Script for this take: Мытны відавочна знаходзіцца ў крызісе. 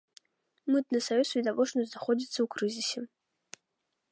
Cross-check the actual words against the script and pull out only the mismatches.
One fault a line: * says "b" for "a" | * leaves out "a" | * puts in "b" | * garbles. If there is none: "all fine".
* puts in "саюз"